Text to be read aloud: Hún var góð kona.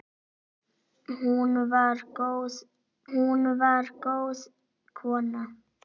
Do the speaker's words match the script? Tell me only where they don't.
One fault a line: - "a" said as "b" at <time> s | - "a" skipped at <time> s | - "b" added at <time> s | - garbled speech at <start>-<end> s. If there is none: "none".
- "hún var góð" added at 3.1 s